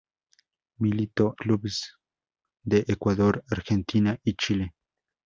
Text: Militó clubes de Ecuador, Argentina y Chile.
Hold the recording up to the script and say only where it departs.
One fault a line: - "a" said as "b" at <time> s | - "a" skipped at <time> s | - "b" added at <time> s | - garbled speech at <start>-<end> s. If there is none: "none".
none